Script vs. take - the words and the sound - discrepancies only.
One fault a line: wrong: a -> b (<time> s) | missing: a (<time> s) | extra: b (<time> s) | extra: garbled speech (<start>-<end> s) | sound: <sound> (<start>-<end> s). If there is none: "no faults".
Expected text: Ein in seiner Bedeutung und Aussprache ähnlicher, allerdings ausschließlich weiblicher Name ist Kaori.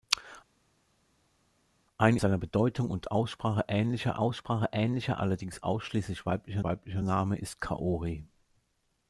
missing: in (2.2 s)
extra: Aussprache ähnlicher (4.2 s)
extra: weiblicher (6.6 s)